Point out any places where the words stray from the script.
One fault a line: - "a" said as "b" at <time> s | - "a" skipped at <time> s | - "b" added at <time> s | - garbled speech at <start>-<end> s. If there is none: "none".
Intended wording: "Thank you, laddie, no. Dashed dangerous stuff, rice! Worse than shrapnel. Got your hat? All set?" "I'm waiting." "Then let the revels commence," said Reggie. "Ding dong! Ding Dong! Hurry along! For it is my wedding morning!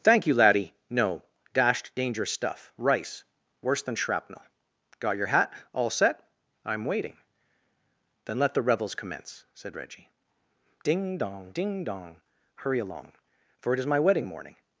none